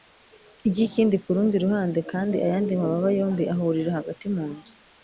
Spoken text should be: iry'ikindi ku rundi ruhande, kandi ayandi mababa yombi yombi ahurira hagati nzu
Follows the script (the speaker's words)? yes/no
no